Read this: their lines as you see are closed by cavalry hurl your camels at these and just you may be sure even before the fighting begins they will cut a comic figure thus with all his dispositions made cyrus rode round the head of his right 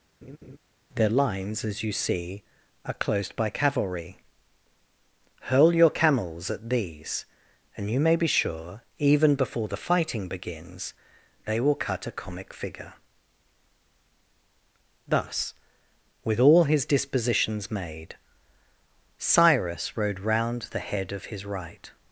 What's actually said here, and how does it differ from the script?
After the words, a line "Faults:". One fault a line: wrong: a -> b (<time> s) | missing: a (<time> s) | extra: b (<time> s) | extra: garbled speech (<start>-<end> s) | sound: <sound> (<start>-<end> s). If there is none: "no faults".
their lines as you see are closed by cavalry hurl your camels at these and you may be sure even before the fighting begins they will cut a comic figure thus with all his dispositions made cyrus rode round the head of his right
Faults:
sound: laugh (0.2-0.6 s)
missing: just (7.9 s)